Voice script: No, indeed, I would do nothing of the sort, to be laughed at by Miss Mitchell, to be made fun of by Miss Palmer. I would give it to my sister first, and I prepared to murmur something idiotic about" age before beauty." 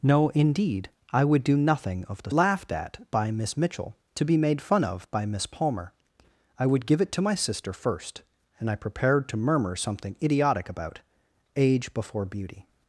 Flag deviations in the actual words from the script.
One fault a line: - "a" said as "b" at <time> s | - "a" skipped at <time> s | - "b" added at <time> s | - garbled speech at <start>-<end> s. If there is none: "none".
- "sort to be" skipped at 2.3 s